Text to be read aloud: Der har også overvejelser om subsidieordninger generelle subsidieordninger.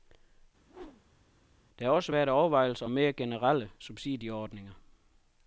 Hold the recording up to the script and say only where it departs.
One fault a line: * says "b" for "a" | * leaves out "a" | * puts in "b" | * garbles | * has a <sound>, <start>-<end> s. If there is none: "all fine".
* has a whoosh, 0.7-1.2 s
* puts in "været"
* says "mere" for "subsidieordninger"